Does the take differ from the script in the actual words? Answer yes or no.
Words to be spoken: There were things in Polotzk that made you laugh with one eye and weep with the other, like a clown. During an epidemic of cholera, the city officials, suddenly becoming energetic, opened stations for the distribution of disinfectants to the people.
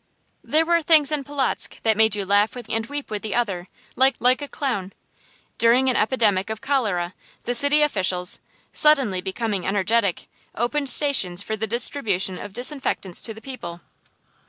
yes